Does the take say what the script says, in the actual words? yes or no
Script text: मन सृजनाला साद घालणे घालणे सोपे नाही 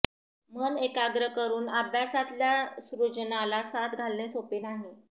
no